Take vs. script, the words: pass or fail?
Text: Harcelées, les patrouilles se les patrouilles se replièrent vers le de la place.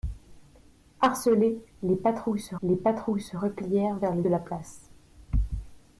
pass